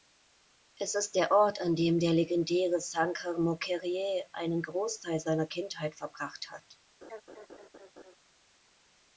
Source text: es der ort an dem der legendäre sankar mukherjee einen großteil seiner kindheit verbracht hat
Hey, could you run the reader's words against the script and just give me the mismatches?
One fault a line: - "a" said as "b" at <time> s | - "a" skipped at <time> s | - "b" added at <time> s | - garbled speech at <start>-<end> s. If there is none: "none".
- "ist" added at 0.9 s